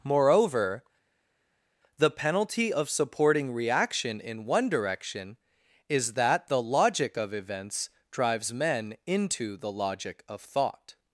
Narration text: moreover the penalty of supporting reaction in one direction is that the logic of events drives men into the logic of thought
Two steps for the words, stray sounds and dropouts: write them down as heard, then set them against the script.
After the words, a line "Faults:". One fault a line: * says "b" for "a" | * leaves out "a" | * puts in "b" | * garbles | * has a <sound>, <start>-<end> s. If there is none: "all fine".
moreover the penalty of supporting reaction in one direction is that the logic of events drives men into the logic of thought
Faults:
all fine